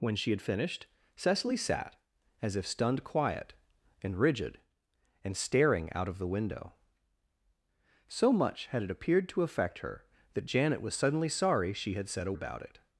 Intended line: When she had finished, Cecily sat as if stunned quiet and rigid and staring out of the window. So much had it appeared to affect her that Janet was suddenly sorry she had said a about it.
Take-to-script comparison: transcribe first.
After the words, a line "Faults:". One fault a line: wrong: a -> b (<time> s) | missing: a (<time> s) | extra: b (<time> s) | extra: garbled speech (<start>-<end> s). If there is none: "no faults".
When she had finished, Cecily sat as if stunned quiet and rigid and staring out of the window. So much had it appeared to affect her that Janet was suddenly sorry she had said a about it.
Faults:
no faults